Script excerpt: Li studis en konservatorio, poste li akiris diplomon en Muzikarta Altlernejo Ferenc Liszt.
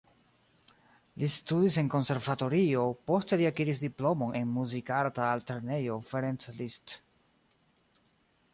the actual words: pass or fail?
pass